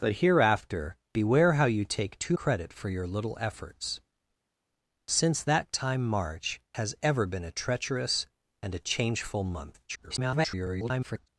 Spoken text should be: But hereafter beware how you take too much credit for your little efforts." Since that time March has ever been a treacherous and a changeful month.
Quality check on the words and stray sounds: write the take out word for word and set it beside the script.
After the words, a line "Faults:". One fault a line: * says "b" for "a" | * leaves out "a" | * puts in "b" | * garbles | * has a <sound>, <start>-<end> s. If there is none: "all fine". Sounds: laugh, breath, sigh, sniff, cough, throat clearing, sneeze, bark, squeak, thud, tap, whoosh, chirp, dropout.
But hereafter beware how you take too credit for your little efforts." Since that time March has ever been a treacherous and a changeful month. [garbled]
Faults:
* leaves out "much"
* garbles